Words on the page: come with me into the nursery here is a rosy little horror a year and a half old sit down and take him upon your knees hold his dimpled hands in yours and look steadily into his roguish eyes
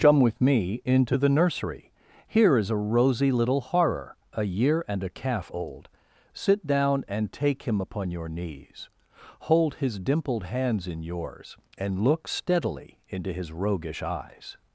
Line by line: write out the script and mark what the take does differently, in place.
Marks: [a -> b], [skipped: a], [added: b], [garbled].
come with me into the nursery here is a rosy little horror a year and a [half -> calf] old sit down and take him upon your knees hold his dimpled hands in yours and look steadily into his roguish eyes